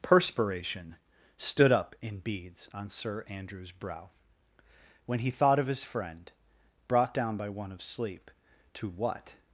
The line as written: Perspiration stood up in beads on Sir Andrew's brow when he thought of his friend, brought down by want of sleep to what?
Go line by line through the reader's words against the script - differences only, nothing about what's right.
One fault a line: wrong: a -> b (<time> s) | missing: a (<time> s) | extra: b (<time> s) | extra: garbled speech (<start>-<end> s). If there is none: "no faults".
wrong: want -> one (7.5 s)